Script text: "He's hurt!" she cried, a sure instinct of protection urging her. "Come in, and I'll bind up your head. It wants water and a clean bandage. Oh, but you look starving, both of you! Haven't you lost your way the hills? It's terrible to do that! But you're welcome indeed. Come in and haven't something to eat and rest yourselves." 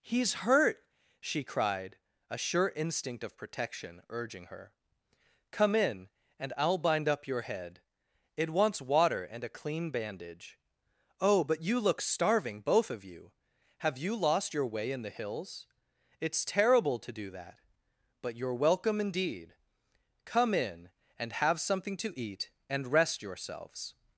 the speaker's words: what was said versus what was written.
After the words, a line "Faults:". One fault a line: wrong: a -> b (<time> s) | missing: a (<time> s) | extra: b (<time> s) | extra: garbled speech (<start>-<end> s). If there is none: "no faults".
"He's hurt!" she cried, a sure instinct of protection urging her. "Come in, and I'll bind up your head. It wants water and a clean bandage. Oh, but you look starving, both of you! Have you lost your way in the hills? It's terrible to do that! But you're welcome indeed. Come in and have something to eat and rest yourselves."
Faults:
wrong: Haven't -> Have (13.8 s)
extra: in (14.9 s)
wrong: haven't -> have (21.3 s)